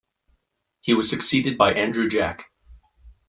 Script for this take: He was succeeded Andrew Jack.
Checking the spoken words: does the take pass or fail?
fail